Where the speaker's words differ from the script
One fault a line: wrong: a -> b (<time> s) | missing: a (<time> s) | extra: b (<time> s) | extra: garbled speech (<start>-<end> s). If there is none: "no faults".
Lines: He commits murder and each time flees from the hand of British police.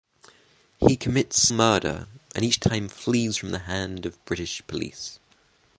no faults